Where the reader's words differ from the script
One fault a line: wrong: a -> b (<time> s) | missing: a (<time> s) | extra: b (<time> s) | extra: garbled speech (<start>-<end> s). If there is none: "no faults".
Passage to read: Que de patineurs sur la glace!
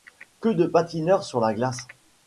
no faults